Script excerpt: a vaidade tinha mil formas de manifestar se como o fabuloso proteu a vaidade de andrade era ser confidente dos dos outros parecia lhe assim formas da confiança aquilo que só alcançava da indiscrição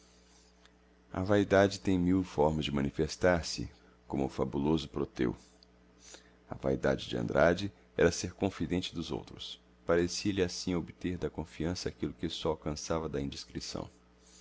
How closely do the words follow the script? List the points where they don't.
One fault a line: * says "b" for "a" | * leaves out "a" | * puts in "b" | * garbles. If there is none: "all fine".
* says "tem" for "tinha"
* leaves out "dos"
* says "obter" for "formas"